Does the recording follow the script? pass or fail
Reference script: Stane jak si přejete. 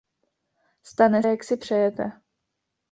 pass